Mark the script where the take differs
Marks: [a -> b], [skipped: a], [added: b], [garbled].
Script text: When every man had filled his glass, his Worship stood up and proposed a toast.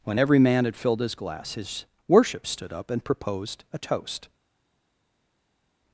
When every man had filled his glass, his Worship stood up and proposed a toast.